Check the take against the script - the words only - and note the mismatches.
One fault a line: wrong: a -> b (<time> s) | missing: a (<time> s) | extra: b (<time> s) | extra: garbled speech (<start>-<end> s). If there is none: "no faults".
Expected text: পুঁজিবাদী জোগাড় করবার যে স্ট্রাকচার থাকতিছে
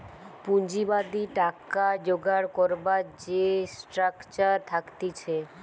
extra: টাকা (1.4 s)